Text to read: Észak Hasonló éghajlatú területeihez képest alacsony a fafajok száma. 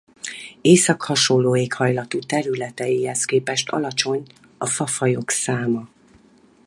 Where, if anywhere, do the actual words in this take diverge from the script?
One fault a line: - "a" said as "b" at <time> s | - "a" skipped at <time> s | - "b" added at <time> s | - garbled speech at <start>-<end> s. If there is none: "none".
none